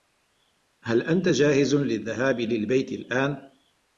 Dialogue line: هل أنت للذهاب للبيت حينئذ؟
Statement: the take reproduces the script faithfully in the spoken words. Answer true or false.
false